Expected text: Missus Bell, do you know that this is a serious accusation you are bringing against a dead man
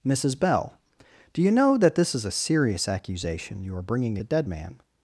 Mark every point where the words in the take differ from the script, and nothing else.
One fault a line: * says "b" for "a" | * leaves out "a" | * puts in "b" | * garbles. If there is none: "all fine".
* leaves out "against"